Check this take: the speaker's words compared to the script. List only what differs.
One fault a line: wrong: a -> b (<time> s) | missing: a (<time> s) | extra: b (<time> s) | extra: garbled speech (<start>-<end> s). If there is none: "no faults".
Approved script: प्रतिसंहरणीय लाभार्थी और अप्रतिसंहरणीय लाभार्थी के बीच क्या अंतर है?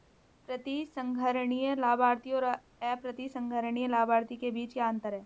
no faults